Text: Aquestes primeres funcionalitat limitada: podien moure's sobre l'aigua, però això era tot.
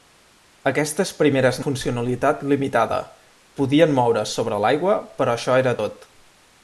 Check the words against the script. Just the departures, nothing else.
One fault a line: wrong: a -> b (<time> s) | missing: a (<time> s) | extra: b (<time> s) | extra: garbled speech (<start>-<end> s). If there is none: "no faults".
no faults